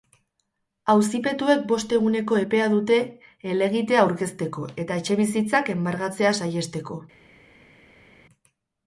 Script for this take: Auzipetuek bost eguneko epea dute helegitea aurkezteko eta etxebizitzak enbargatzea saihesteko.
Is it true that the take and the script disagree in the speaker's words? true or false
false